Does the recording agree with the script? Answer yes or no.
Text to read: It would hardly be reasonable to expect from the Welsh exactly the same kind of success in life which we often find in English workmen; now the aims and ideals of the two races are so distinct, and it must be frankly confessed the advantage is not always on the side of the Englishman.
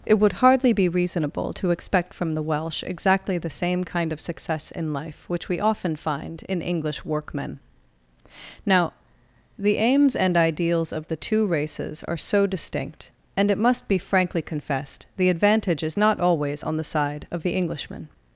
yes